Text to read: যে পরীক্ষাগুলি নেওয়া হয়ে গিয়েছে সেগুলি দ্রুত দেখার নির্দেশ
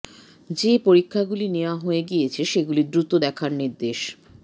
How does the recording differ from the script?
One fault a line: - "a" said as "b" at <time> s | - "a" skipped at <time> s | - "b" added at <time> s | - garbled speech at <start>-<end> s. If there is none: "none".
none